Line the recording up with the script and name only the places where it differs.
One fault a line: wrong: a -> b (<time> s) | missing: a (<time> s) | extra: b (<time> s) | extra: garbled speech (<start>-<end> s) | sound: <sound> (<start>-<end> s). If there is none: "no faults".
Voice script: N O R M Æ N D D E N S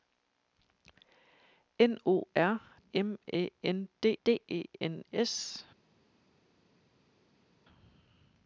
no faults